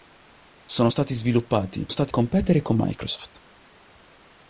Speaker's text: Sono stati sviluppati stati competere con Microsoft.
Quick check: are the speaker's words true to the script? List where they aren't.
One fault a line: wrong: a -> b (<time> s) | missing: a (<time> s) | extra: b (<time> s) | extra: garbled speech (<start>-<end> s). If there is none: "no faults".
no faults